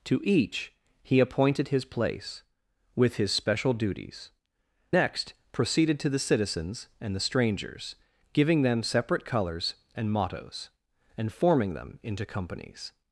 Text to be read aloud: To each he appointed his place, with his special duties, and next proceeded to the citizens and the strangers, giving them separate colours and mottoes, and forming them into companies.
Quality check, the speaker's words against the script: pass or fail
fail